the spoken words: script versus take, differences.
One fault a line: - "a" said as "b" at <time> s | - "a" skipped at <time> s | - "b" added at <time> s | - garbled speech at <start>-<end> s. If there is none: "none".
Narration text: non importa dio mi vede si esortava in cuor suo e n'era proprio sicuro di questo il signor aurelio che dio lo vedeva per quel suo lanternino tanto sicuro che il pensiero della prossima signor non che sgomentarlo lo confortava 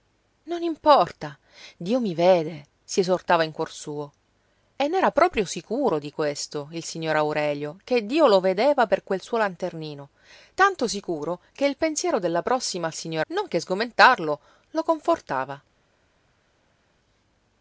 none